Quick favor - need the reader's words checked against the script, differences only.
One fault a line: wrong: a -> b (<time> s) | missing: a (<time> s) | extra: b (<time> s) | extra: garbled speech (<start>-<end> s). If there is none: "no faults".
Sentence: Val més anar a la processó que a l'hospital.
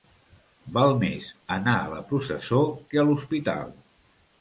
no faults